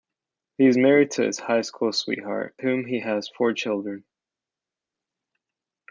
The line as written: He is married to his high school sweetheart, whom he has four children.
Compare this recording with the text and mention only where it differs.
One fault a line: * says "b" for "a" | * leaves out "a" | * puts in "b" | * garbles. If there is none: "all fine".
all fine